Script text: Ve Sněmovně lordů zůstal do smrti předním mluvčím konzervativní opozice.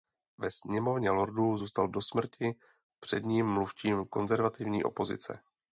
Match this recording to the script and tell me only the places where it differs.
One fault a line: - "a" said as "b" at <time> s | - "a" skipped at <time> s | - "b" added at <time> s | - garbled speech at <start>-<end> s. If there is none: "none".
none